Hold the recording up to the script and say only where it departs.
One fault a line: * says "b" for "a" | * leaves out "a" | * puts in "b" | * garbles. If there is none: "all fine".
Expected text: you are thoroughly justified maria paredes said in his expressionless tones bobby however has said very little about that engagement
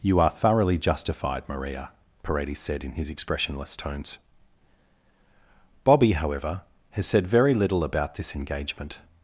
* says "this" for "that"